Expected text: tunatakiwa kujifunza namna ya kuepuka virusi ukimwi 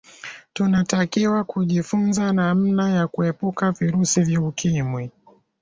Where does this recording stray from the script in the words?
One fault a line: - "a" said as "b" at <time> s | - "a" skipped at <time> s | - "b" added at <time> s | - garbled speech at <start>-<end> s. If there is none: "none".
- "vya" added at 4.2 s